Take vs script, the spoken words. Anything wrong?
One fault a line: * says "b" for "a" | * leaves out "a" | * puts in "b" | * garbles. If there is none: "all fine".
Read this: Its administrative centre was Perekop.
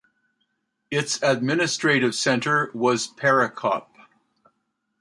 all fine